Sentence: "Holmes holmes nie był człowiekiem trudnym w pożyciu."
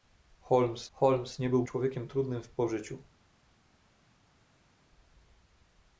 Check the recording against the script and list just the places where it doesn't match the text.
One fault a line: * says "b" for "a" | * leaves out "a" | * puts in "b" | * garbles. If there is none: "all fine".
all fine